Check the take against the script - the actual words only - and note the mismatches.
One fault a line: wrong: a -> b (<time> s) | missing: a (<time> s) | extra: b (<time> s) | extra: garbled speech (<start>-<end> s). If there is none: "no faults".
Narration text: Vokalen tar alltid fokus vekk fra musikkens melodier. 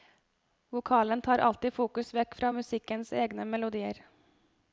extra: egne (3.1 s)